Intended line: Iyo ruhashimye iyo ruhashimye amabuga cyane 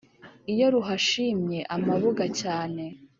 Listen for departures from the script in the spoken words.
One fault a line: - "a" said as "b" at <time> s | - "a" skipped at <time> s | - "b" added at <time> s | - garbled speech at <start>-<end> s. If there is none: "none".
- "iyo ruhashimye" skipped at 1.6 s